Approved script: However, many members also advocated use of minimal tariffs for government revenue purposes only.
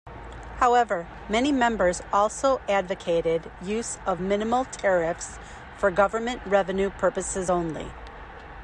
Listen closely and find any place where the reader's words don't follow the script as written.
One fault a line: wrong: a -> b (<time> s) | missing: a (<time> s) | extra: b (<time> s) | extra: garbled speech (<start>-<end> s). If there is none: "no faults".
no faults